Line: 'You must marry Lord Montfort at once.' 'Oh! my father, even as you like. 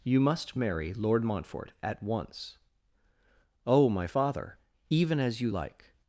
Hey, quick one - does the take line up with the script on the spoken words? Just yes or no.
yes